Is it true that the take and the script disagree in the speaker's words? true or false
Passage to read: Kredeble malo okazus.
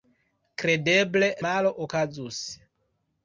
false